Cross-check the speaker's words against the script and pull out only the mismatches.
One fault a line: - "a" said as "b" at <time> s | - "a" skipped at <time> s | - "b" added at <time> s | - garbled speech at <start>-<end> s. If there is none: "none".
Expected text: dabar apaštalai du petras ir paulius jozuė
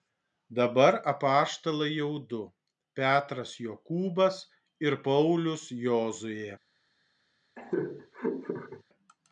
- "jau" added at 2.0 s
- "jokūbas" added at 3.7 s